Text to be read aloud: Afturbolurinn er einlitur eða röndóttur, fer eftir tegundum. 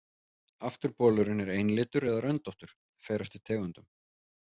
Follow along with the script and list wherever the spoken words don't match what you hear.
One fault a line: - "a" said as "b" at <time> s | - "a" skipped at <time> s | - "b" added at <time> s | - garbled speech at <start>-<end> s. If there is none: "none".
none